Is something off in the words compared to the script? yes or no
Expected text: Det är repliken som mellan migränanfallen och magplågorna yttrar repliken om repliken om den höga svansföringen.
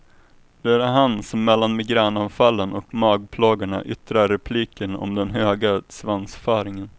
yes